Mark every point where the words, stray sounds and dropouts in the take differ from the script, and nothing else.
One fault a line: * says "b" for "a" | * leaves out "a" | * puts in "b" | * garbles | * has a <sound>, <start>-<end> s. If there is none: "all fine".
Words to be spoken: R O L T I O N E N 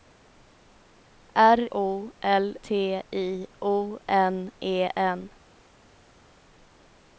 all fine